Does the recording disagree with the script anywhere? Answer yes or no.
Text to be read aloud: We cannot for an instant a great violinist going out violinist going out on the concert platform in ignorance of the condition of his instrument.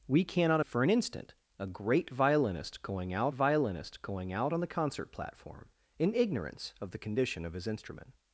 no